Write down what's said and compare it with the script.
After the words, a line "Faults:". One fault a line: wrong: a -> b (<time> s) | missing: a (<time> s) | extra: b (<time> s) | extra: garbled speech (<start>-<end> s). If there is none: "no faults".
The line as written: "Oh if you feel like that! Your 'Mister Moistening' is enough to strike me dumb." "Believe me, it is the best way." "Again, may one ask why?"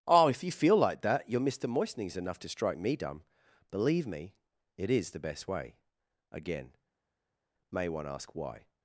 "Oh if you feel like that! Your 'Mister Moistening' is enough to strike me dumb." "Believe me, it is the best way." "Again, may one ask why?"
Faults:
no faults